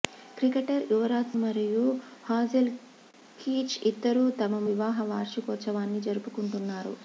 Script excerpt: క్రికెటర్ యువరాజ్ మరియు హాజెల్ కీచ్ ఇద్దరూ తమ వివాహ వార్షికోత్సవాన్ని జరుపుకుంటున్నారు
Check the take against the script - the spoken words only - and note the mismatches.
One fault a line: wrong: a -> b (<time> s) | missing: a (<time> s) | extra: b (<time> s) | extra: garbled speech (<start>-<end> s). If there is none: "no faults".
no faults